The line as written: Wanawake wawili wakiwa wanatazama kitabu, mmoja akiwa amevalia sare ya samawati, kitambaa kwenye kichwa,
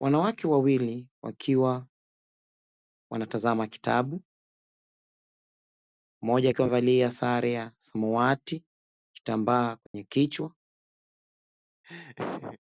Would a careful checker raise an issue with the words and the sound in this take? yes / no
yes